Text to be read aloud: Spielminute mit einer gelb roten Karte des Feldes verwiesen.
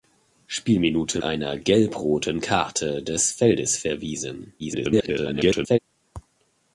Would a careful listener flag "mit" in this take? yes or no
yes